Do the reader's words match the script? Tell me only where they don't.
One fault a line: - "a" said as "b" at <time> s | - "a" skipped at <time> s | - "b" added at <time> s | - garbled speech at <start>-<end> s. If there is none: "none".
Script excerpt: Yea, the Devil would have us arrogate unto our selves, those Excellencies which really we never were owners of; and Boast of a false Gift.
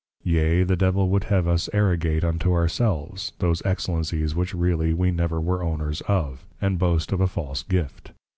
none